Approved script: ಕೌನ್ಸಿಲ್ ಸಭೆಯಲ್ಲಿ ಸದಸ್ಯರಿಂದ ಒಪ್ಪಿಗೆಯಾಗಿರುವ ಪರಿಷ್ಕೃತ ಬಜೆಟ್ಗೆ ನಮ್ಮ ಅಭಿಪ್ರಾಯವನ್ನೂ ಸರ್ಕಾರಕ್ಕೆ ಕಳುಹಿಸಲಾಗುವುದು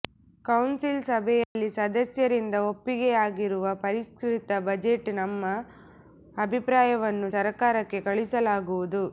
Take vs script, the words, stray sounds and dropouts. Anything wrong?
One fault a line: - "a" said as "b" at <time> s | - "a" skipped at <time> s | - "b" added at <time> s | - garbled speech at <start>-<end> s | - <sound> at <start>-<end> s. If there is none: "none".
- dropout at 1.4-1.6 s